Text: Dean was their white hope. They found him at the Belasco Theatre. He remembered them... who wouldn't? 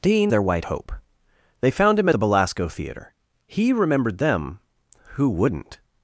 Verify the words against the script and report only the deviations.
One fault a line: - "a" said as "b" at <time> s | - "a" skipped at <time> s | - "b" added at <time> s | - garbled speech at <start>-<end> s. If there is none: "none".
- "was" skipped at 0.3 s
- "at" skipped at 2.1 s